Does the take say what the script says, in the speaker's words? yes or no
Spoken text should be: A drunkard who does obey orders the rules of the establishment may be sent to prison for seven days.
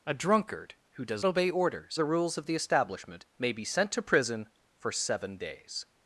yes